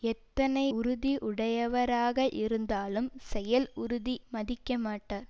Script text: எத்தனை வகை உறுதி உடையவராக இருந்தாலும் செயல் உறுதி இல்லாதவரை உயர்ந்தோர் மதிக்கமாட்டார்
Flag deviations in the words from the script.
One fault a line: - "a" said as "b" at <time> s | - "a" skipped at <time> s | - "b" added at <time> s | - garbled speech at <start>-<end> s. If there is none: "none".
- "வகை" skipped at 0.6 s
- "இல்லாதவரை உயர்ந்தோர்" skipped at 4.1 s